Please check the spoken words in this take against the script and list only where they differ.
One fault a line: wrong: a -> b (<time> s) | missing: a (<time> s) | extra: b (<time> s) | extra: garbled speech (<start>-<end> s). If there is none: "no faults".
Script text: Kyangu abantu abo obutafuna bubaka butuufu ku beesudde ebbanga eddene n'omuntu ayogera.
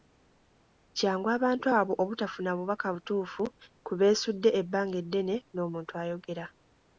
no faults